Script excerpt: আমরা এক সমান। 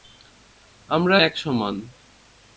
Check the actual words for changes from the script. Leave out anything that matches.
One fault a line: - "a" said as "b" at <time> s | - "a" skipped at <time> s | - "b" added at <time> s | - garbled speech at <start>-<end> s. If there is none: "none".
none